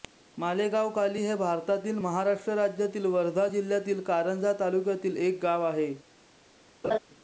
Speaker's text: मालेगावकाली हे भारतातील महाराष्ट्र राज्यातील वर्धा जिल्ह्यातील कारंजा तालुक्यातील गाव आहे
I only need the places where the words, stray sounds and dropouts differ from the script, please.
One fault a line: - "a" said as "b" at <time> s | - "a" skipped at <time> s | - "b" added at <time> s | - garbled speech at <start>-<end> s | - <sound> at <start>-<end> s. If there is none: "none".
- "एक" added at 5.2 s
- laugh at 6.8-7.0 s